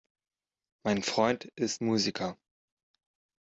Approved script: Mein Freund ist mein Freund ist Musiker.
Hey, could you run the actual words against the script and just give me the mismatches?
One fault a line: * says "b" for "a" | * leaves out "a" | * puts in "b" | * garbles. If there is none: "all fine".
* leaves out "mein Freund ist"